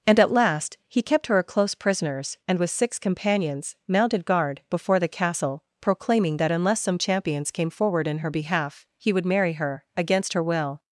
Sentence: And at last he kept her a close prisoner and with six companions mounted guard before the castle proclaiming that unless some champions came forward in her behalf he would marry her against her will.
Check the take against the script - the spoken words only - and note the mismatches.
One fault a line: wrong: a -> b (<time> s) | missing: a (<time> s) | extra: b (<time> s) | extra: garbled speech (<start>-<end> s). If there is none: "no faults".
wrong: prisoner -> prisoners (1.8 s)